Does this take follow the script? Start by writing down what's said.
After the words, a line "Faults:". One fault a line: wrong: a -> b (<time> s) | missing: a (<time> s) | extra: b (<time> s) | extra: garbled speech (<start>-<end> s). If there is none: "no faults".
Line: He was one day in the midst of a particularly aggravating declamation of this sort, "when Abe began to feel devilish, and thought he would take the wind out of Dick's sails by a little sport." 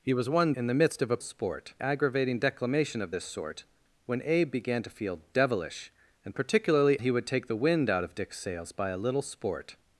He was one in the midst of a sport aggravating declamation of this sort, "when Abe began to feel devilish, and particularly he would take the wind out of Dick's sails by a little sport."
Faults:
missing: day (0.5 s)
wrong: particularly -> sport (1.2 s)
wrong: thought -> particularly (6.3 s)